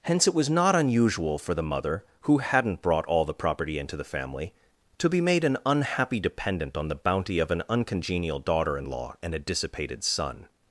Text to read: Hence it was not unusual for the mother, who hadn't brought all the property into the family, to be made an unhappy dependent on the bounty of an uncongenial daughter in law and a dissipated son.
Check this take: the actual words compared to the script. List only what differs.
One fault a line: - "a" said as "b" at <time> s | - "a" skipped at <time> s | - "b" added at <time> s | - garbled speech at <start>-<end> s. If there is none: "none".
none